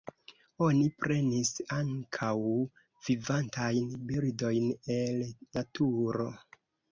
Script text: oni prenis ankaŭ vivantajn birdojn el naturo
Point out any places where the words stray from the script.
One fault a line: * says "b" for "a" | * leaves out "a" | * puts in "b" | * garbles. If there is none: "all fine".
all fine